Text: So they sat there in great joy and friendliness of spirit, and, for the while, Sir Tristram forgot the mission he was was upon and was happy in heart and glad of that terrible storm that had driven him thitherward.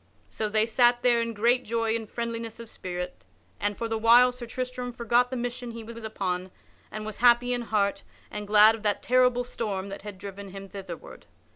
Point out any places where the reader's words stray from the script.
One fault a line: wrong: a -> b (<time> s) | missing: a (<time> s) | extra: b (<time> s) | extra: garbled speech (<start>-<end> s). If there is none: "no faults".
no faults